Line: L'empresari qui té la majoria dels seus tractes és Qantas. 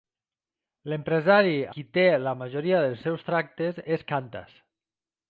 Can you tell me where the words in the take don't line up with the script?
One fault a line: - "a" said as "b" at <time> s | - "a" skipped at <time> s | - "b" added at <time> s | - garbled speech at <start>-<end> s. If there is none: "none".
none